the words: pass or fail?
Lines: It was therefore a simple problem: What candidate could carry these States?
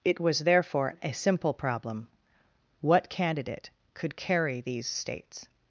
pass